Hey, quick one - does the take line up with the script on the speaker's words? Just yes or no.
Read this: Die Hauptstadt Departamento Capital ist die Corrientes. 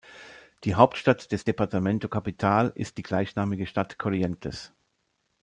no